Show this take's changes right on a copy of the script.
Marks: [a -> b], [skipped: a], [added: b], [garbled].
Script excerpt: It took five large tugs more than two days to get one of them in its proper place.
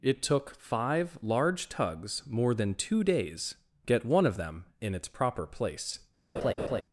It took five large tugs more than two days [skipped: to] get one of them in its proper place.